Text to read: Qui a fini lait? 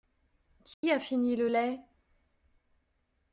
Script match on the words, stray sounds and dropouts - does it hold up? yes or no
no